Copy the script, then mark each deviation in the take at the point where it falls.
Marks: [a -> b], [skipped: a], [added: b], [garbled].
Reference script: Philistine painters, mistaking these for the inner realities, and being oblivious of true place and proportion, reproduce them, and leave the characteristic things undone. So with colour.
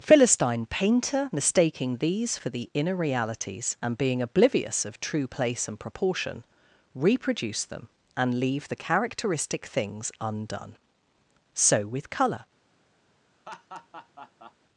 Philistine [painters, -> painter] mistaking these for the inner realities, and being oblivious of true place and proportion, reproduce them, and leave the characteristic things undone. So with colour.